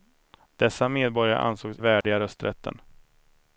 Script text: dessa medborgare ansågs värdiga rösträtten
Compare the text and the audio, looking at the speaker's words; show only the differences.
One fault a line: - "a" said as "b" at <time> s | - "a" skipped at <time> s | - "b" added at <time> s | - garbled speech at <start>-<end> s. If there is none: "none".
none